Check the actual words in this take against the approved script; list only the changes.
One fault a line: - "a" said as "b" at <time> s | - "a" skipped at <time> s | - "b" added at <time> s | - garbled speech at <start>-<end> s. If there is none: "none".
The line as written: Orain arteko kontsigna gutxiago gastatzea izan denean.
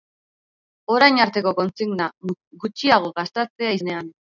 - "izan" skipped at 3.8 s